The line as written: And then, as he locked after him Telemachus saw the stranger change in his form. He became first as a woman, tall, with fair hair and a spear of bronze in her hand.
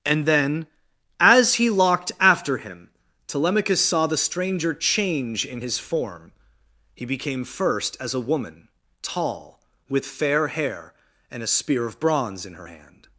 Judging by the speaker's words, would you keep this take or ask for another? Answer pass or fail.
pass